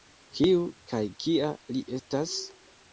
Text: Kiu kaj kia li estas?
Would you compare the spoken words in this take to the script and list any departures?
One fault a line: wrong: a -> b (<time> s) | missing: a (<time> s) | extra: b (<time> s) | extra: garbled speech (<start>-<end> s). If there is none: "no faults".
no faults